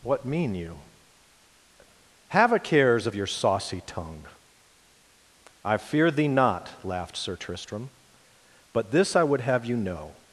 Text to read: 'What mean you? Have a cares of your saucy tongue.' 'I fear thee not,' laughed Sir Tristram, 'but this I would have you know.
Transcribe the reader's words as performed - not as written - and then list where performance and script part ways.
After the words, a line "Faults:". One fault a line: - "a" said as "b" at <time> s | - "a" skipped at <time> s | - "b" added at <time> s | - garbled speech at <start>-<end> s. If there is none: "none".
'What mean you? Have a cares of your saucy tongue.' 'I fear thee not,' laughed Sir Tristram, 'but this I would have you know.
Faults:
none